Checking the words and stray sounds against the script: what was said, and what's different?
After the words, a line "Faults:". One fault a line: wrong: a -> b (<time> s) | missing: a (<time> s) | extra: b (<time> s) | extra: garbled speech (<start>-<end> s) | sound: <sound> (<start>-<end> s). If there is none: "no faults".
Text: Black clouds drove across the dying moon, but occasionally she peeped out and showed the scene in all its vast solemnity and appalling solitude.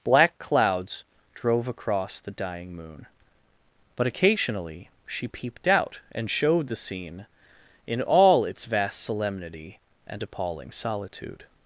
Black clouds drove across the dying moon, but occasionally she peeped out and showed the scene in all its vast solemnity and appalling solitude.
Faults:
no faults